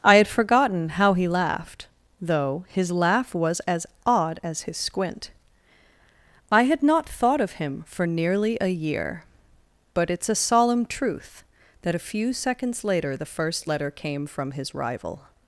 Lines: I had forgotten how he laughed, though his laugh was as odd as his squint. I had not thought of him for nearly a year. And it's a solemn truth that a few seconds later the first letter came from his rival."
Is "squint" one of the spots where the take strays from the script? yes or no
no